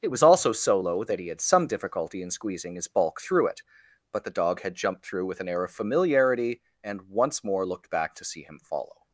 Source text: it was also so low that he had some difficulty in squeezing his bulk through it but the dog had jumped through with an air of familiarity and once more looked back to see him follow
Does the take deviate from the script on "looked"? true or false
false